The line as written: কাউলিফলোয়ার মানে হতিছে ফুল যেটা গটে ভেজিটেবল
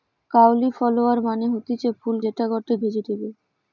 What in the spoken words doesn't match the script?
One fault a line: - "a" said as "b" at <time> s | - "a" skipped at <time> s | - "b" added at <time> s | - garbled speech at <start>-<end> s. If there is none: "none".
none